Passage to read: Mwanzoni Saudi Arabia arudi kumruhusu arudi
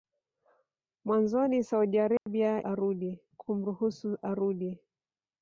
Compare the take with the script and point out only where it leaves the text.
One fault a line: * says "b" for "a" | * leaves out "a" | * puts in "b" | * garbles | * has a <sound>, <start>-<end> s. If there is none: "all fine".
* has a dropout, 2.2-2.3 s